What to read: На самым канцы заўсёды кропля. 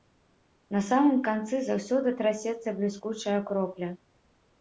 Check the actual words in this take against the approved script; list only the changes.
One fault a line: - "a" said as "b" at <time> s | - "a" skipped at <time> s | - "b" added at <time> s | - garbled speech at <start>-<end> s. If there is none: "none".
- "трасецца бліскучая" added at 2.2 s